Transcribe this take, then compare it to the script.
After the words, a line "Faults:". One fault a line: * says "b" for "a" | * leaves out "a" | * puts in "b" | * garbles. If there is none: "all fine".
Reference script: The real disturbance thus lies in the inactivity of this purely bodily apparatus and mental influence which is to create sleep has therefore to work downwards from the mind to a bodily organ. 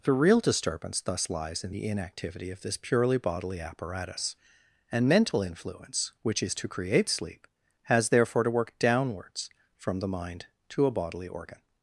The real disturbance thus lies in the inactivity of this purely bodily apparatus and mental influence which is to create sleep has therefore to work downwards from the mind to a bodily organ.
Faults:
all fine